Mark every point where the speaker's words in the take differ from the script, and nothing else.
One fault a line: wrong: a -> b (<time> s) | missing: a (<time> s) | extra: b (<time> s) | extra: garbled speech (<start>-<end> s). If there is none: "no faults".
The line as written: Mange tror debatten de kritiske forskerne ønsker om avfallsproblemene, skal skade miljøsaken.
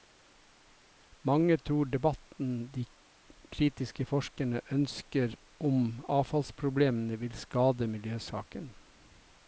wrong: skal -> vil (7.2 s)